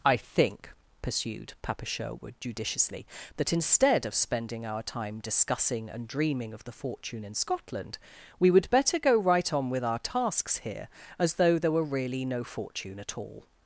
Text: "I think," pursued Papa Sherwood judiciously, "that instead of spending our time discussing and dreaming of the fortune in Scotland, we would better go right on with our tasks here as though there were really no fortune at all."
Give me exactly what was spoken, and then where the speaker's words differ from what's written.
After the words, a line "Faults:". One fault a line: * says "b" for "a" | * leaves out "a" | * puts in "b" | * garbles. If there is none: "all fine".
"I think," pursued Papa Sherwood judiciously, "that instead of spending our time discussing and dreaming of the fortune in Scotland, we would better go right on with our tasks here as though there were really no fortune at all."
Faults:
all fine